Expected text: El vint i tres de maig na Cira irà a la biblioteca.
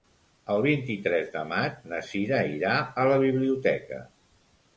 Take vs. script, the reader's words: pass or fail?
pass